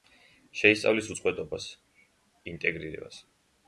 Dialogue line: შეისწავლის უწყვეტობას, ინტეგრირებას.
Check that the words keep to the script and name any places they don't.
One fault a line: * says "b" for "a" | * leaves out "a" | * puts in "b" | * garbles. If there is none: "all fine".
all fine